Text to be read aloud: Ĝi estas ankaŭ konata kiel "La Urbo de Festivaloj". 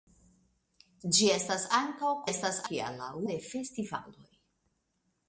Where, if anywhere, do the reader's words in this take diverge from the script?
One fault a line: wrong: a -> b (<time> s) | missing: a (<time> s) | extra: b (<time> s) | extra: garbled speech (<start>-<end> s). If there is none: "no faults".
wrong: konata -> estas (2.3 s)
missing: Urbo (3.1 s)